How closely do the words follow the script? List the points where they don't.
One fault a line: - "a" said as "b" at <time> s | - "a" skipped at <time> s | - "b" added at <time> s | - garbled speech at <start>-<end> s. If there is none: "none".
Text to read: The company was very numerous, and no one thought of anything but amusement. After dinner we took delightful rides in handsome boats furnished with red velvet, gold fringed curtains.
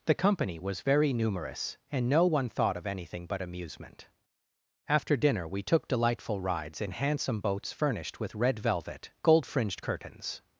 none